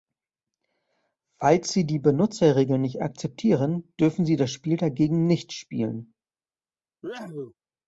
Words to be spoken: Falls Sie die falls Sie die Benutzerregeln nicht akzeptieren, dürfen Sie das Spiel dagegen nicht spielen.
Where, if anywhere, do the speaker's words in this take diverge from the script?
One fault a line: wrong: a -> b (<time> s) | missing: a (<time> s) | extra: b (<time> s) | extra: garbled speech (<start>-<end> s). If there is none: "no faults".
missing: falls Sie die (2.0 s)